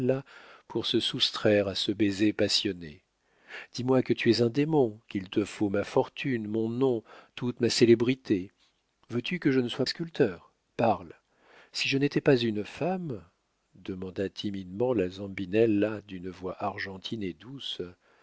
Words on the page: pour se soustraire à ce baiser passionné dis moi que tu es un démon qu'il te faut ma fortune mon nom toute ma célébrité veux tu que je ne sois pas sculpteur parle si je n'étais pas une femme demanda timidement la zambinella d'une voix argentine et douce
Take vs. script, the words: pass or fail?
fail